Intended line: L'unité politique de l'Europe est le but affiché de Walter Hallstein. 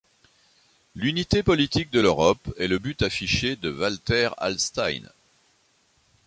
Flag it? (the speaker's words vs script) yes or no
no